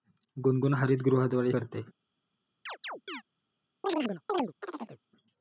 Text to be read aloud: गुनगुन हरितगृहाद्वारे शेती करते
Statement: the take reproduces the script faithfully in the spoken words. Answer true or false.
false